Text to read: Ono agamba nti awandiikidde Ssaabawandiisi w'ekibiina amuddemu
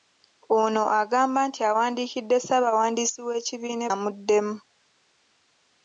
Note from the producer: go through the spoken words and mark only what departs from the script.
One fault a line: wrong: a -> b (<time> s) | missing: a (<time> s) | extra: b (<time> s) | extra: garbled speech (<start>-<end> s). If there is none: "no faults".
no faults